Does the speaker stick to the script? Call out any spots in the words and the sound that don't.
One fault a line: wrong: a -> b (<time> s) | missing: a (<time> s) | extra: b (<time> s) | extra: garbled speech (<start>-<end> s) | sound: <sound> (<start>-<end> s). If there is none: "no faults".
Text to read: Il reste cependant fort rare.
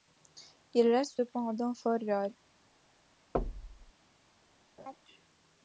sound: thud (3.3-3.9 s)
sound: laugh (4.8-5.0 s)